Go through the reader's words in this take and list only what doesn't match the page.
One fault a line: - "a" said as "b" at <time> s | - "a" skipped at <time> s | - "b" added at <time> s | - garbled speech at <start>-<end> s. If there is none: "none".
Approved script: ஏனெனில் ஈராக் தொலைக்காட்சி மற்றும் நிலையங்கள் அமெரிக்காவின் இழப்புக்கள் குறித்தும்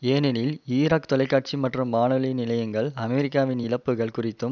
- "வானொலி" added at 1.9 s